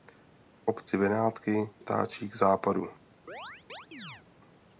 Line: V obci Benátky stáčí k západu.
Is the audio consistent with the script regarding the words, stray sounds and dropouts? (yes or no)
no